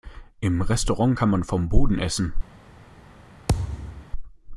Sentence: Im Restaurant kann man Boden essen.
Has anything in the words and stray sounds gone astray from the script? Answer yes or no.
yes